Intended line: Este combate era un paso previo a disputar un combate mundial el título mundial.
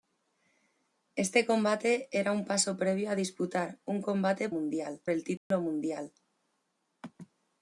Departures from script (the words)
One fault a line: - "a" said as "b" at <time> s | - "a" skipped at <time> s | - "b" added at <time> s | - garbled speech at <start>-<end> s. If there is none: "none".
none